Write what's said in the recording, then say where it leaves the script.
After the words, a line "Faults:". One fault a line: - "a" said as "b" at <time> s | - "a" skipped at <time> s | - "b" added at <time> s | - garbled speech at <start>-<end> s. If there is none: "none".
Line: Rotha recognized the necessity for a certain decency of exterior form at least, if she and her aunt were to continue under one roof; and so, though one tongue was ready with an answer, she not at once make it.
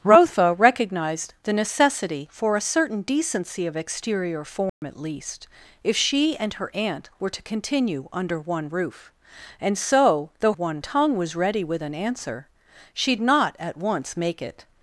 Rotha recognized the necessity for a certain decency of exterior form at least, if she and her aunt were to continue under one roof; and so, though one tongue was ready with an answer, she not at once make it.
Faults:
none